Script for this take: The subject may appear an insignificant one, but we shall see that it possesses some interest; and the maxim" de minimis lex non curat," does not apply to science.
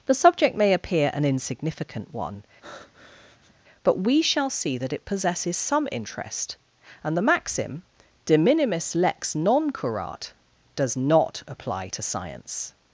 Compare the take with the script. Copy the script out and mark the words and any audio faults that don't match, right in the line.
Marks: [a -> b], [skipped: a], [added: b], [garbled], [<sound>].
The subject may appear an insignificant one, [breath] but we shall see that it possesses some interest; and the maxim" de minimis lex non curat," does not apply to science.